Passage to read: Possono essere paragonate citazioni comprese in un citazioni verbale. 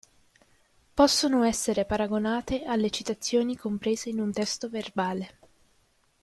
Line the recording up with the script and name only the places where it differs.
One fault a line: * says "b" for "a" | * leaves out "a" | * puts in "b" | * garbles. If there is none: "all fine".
* puts in "alle"
* says "testo" for "citazioni"